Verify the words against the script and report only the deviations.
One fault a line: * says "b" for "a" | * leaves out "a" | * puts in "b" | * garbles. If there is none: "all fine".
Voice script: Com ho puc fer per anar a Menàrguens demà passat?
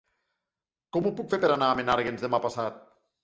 all fine